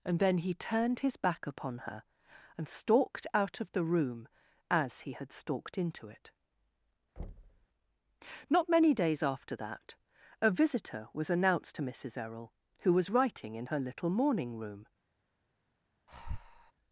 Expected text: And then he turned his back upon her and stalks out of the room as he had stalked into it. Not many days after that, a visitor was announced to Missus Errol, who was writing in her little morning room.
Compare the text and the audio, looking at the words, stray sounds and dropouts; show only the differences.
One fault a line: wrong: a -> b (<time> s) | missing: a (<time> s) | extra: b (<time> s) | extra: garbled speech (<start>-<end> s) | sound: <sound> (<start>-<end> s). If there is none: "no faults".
wrong: stalks -> stalked (2.7 s)
sound: thud (7.2-7.7 s)
sound: breath (16.1-16.7 s)